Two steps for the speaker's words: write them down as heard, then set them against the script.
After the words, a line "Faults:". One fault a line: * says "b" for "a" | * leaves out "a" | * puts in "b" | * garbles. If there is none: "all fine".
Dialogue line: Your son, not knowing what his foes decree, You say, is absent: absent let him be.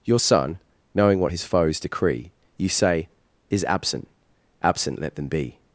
Your son, knowing what his foes decree, You say, is absent: absent let them be.
Faults:
* leaves out "not"
* says "them" for "him"